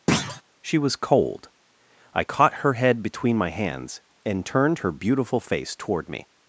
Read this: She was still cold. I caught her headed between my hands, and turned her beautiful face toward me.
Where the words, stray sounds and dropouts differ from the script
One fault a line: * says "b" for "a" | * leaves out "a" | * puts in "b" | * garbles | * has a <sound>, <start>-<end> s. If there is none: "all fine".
* has a thud, 0.1-0.4 s
* leaves out "still"
* says "head" for "headed"